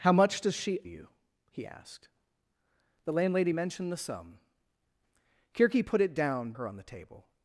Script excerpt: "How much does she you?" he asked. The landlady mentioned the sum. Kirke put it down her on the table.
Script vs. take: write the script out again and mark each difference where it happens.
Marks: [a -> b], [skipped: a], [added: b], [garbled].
"How much does she you?" he asked. The landlady mentioned the sum. Kirke put it down her on the table.